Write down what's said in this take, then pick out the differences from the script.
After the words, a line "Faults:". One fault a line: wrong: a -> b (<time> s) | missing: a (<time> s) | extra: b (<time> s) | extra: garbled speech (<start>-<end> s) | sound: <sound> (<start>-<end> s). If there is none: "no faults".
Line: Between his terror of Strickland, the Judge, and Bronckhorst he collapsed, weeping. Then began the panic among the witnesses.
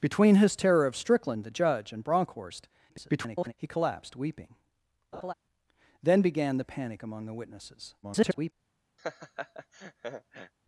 Between his terror of Strickland, the Judge, and Bronckhorst [garbled] he collapsed, weeping. Then began the panic among the witnesses. [garbled]
Faults:
extra: garbled speech (2.9-3.5 s)
sound: laugh (5.1-5.3 s)
extra: garbled speech (8.0-8.5 s)
sound: laugh (9.0-10.5 s)